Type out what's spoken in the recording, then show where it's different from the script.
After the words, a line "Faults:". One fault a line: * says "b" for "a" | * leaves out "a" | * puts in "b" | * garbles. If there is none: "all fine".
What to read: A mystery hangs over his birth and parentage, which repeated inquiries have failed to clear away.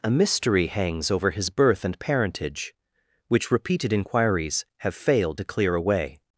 A mystery hangs over his birth and parentage, which repeated inquiries have failed to clear away.
Faults:
all fine